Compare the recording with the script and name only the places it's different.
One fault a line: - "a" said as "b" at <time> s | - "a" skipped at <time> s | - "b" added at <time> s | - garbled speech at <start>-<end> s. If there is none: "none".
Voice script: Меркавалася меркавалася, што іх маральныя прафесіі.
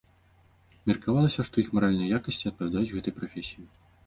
- "меркавалася" skipped at 1.4 s
- "якасці адпавядаюць гэтай" added at 2.2 s